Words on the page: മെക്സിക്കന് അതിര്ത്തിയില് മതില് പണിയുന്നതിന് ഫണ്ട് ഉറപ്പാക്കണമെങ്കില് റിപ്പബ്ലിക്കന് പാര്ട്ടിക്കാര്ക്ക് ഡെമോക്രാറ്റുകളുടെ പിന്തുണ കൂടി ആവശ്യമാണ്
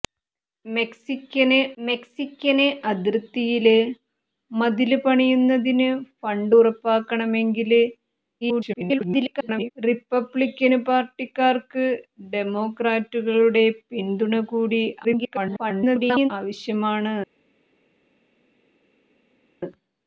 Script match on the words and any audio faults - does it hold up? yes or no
no